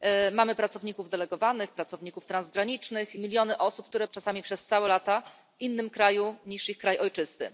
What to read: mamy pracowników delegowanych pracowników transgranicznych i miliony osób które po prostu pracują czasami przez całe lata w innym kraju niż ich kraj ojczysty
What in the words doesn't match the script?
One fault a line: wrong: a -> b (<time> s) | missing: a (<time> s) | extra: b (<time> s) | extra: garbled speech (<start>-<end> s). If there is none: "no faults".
missing: i (3.1 s)
missing: po prostu pracują (4.1 s)